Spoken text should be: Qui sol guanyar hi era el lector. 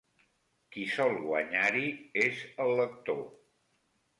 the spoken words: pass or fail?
fail